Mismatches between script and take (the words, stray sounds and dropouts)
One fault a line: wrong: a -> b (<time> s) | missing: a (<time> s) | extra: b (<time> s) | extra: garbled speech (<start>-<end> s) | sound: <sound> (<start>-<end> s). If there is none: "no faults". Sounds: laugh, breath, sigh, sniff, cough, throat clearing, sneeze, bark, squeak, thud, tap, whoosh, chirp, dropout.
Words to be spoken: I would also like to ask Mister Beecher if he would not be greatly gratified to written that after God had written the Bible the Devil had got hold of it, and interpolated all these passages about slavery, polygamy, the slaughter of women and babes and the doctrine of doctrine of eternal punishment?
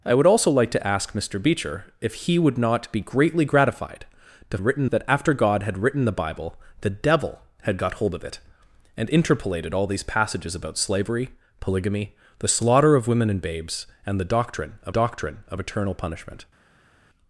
no faults